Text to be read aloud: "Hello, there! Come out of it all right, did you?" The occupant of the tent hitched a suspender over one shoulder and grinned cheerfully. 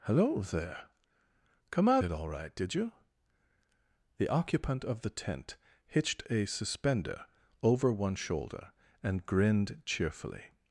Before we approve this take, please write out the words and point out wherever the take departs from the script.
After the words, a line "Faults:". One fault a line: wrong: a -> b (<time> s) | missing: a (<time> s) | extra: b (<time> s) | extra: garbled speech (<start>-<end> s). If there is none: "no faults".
"Hello, there! Come out it all right, did you?" The occupant of the tent hitched a suspender over one shoulder and grinned cheerfully.
Faults:
missing: of (2.0 s)